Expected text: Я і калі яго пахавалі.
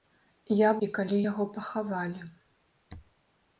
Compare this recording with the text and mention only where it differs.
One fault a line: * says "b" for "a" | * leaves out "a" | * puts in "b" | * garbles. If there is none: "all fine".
all fine